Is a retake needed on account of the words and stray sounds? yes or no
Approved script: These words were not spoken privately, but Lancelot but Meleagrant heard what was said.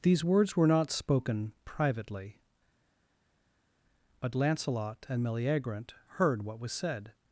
yes